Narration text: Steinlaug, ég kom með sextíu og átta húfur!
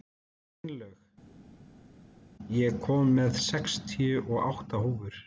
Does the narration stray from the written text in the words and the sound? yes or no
no